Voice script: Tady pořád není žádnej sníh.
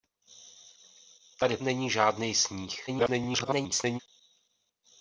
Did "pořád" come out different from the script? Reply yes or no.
yes